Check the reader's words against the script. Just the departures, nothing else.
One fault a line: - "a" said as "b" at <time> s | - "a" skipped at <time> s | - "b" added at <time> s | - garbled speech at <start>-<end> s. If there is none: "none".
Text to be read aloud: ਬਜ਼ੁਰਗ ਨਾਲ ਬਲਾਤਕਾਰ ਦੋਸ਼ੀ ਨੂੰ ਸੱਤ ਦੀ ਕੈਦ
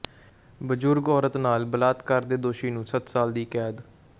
- "ਔਰਤ" added at 1.1 s
- "ਦੇ" added at 2.2 s
- "ਸਾਲ" added at 3.1 s